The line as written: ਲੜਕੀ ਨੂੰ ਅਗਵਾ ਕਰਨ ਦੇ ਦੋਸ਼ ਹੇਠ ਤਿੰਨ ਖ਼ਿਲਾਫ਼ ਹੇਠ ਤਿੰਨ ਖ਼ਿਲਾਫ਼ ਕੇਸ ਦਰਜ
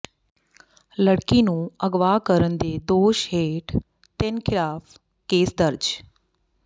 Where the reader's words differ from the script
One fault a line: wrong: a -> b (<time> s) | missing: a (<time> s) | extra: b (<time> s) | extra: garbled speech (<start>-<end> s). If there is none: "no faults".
missing: ਹੇਠ ਤਿੰਨ ਖ਼ਿਲਾਫ਼ (5.0 s)